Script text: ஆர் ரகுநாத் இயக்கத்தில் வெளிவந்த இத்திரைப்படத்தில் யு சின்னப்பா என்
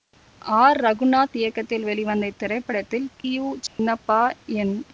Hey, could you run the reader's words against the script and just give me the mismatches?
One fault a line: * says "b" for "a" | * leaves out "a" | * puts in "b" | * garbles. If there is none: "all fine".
all fine